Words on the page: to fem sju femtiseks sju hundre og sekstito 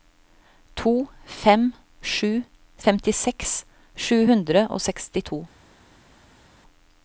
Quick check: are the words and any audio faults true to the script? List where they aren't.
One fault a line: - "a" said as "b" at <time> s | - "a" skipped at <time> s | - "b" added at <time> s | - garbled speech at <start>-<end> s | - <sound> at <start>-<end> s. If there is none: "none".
none